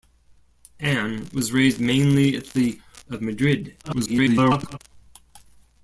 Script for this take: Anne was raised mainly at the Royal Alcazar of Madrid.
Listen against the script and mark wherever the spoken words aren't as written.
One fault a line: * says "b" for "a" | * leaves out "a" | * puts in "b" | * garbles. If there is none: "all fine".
* leaves out "Royal Alcazar"
* garbles